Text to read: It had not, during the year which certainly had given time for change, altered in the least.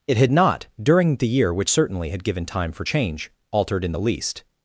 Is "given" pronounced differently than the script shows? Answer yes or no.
no